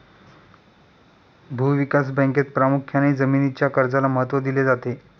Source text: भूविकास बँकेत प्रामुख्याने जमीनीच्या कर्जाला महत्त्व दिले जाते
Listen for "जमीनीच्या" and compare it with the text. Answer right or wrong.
right